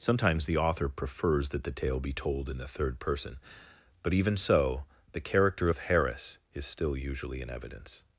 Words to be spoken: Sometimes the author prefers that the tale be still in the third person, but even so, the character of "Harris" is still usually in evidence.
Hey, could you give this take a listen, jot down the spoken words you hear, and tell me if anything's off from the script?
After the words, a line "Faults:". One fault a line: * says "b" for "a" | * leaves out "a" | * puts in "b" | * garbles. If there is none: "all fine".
Sometimes the author prefers that the tale be told in the third person, but even so, the character of "Harris" is still usually in evidence.
Faults:
* says "told" for "still"